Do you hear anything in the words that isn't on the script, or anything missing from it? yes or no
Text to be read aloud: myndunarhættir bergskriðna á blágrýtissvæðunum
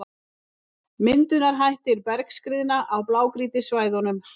no